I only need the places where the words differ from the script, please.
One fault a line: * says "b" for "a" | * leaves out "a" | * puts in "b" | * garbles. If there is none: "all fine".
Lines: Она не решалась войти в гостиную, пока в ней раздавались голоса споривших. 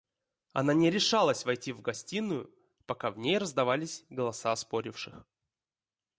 all fine